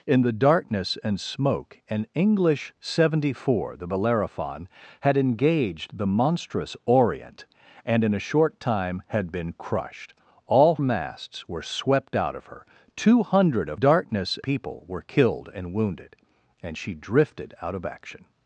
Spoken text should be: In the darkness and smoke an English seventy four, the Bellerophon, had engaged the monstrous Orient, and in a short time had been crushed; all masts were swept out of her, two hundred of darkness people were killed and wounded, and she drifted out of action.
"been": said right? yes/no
yes